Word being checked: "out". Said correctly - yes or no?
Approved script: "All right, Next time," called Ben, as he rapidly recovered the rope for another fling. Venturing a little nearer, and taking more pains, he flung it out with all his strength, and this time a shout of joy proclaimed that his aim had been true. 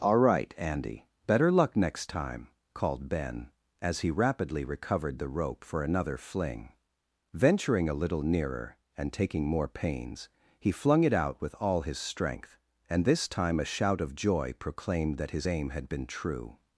yes